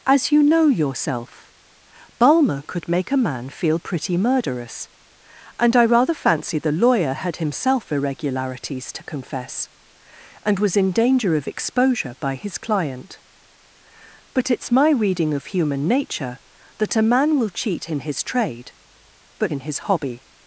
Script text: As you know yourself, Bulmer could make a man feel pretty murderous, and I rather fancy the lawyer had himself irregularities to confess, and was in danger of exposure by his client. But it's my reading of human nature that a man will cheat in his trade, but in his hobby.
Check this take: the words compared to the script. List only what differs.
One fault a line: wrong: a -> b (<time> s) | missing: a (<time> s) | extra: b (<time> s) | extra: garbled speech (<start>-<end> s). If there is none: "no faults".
no faults